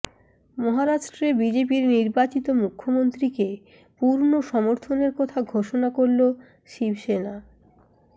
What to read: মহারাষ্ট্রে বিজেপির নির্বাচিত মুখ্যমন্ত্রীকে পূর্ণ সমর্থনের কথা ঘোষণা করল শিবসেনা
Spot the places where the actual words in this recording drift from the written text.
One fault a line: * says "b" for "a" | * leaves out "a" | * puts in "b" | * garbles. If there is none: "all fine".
all fine